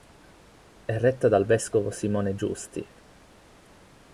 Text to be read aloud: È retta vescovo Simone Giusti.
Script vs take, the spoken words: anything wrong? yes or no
yes